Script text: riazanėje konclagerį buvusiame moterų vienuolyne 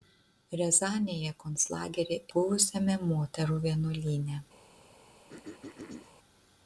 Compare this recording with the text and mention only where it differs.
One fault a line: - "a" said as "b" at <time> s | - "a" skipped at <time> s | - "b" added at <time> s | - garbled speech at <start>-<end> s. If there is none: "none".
none